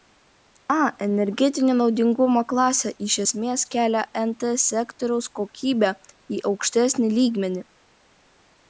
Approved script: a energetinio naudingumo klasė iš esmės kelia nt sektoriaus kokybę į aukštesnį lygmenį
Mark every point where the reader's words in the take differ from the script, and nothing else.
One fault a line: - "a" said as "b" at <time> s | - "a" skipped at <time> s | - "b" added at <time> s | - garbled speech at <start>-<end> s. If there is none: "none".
none